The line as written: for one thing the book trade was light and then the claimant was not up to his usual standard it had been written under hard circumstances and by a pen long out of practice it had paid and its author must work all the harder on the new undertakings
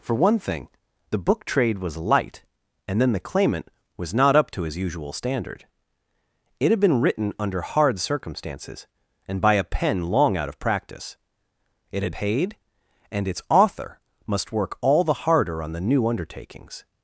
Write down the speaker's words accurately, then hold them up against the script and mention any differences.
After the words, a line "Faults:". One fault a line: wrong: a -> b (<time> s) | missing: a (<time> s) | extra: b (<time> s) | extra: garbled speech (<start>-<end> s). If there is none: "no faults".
for one thing the book trade was light and then the claimant was not up to his usual standard it had been written under hard circumstances and by a pen long out of practice it had paid and its author must work all the harder on the new undertakings
Faults:
no faults